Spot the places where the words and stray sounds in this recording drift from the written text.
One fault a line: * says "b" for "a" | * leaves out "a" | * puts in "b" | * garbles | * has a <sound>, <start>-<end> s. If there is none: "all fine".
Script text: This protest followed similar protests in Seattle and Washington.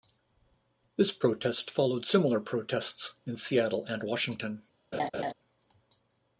* has a laugh, 4.9-5.3 s